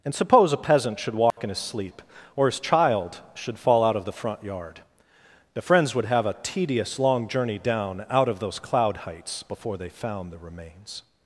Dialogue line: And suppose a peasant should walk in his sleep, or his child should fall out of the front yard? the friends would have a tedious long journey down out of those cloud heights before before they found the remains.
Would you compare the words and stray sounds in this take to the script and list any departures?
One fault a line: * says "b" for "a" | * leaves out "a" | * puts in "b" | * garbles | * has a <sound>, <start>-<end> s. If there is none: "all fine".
* has a dropout, 1.3-1.4 s
* leaves out "before"